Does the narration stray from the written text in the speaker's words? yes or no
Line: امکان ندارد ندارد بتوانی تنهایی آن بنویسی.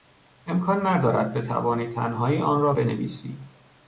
yes